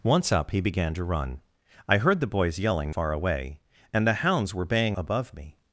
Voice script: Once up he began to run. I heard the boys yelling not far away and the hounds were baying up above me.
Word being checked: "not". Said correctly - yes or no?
no